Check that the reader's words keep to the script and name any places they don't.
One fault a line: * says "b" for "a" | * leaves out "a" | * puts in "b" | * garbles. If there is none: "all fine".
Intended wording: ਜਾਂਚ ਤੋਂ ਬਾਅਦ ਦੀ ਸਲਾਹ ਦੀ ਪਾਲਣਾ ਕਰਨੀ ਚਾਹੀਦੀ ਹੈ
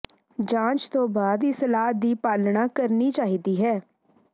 all fine